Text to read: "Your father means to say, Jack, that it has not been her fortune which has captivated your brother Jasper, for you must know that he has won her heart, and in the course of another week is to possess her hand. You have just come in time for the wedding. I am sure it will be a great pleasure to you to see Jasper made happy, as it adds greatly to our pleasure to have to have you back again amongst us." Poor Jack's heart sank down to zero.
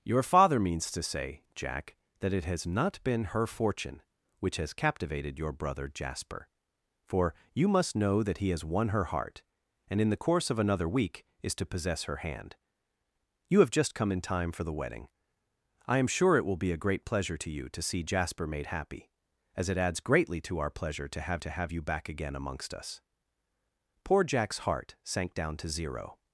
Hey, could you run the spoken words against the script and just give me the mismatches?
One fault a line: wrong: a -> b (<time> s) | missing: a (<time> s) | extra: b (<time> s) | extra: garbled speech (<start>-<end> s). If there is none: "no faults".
no faults